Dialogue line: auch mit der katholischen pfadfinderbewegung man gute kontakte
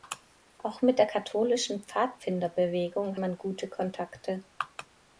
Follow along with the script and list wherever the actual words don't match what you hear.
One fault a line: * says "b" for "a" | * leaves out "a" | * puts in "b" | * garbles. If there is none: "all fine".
all fine